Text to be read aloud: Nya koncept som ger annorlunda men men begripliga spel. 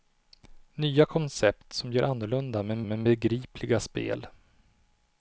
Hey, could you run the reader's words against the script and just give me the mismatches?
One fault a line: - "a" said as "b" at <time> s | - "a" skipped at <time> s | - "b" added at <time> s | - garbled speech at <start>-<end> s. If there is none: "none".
none